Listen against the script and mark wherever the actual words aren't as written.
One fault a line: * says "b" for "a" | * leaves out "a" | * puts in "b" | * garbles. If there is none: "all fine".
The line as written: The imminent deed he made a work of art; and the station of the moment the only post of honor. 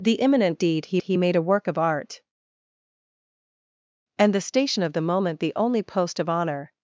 * puts in "he"